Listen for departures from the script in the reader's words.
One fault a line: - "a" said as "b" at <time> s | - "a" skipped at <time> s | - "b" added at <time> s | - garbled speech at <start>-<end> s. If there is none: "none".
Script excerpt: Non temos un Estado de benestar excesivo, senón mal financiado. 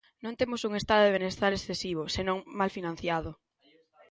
none